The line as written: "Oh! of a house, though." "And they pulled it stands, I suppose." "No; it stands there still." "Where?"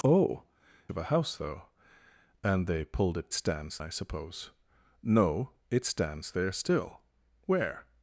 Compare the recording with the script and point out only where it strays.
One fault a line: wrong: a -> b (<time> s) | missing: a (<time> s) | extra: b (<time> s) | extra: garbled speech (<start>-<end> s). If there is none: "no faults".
no faults